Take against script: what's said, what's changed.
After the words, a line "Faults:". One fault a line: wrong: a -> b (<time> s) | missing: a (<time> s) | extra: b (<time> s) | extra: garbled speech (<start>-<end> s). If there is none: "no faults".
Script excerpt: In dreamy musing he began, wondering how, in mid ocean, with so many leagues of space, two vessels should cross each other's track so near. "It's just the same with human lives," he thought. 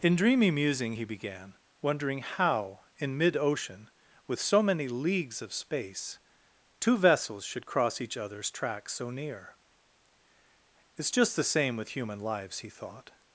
In dreamy musing he began, wondering how, in mid ocean, with so many leagues of space, two vessels should cross each other's track so near. "It's just the same with human lives," he thought.
Faults:
no faults